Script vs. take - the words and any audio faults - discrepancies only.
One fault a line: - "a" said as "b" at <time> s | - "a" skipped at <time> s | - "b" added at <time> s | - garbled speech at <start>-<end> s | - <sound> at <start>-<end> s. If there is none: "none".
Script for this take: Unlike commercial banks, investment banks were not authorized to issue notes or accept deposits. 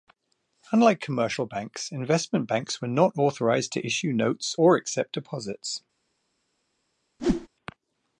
- whoosh at 7.2-7.5 s